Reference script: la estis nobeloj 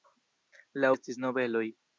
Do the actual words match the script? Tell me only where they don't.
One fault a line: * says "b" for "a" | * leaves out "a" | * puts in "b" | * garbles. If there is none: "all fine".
all fine